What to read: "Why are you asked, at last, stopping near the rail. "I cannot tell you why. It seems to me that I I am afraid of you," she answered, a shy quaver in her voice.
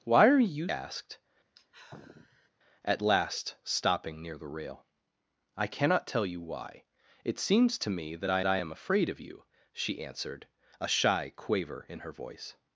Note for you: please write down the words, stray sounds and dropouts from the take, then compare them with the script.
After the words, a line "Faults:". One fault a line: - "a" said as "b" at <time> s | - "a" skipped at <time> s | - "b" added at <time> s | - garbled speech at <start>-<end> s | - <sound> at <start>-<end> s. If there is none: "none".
"Why are you asked, at last, stopping near the rail. "I cannot tell you why. It seems to me that I I am afraid of you," she answered, a shy quaver in her voice.
Faults:
- sigh at 1.6-2.5 s